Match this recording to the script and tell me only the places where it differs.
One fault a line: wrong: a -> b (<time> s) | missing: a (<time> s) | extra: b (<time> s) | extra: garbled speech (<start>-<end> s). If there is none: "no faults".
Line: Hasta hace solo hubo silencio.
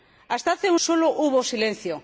no faults